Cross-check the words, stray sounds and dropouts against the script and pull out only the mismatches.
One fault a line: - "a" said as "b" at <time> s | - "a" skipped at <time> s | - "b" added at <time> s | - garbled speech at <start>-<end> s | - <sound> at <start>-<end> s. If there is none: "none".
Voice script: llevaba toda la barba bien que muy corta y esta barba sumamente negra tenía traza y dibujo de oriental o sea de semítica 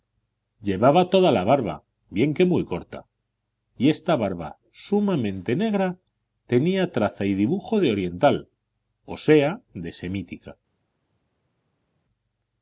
none